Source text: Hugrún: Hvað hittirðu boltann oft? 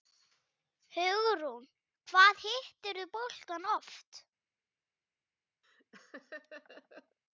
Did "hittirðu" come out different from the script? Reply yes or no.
no